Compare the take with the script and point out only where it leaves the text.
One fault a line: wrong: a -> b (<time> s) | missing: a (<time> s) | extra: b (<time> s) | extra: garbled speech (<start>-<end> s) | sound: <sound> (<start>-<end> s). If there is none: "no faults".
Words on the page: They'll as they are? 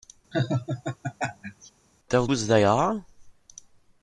sound: laugh (0.3-1.7 s)